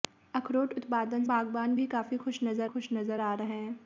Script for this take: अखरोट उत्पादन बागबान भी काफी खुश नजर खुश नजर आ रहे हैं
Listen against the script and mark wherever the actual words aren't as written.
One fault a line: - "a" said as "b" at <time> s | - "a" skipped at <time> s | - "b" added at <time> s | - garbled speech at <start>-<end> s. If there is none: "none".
none